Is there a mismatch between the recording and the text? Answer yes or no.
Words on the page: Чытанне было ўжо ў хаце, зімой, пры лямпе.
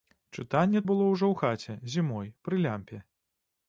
no